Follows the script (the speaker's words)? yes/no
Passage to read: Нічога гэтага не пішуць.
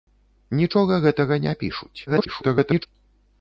no